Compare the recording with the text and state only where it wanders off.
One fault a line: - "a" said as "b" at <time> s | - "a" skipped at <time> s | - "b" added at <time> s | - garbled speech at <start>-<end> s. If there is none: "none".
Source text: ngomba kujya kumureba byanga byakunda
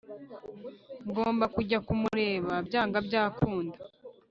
none